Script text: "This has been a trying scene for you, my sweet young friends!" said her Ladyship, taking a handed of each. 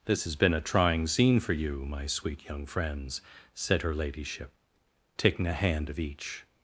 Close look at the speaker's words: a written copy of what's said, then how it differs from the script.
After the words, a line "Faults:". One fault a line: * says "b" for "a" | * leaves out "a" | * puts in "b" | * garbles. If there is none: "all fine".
"This has been a trying scene for you, my sweet young friends!" said her Ladyship, taking a hand of each.
Faults:
* says "hand" for "handed"